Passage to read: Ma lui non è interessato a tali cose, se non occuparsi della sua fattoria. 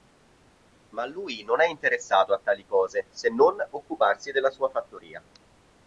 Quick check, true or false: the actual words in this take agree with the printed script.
true